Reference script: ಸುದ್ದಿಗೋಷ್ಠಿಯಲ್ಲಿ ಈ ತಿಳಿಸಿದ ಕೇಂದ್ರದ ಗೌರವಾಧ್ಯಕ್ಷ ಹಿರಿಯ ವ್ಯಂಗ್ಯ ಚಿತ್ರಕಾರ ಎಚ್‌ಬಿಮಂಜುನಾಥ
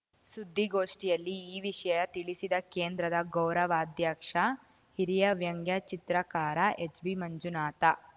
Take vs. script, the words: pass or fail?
fail